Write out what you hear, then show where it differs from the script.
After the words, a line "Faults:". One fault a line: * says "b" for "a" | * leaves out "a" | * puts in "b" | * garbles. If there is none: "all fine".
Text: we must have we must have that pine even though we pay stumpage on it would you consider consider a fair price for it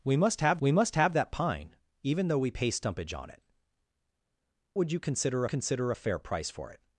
we must have we must have that pine even though we pay stumpage on it would you consider consider a fair price for it
Faults:
all fine